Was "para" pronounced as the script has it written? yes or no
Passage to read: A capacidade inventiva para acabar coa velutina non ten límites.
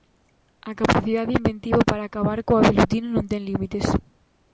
yes